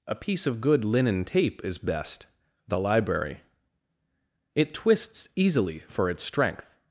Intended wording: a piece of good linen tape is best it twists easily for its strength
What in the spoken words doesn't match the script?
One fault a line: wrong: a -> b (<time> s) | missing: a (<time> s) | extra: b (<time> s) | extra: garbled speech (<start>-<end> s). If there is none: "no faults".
extra: the library (2.7 s)